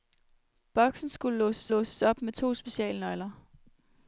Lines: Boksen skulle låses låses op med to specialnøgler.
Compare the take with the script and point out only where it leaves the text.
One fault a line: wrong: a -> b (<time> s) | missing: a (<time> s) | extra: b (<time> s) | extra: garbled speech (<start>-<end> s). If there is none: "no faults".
no faults